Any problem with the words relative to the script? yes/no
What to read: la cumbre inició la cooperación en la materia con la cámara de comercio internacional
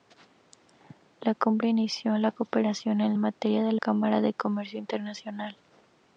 yes